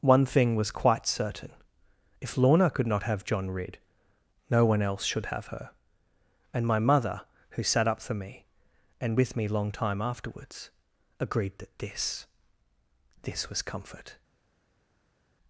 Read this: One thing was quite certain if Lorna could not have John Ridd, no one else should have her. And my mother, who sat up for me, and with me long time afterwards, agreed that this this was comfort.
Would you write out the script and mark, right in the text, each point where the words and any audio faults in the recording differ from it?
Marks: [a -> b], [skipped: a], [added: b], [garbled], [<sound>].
One thing was quite certain if Lorna could not have John Ridd, no one else should have her. And my mother, who sat up for me, and with me long time afterwards, agreed that this this was comfort.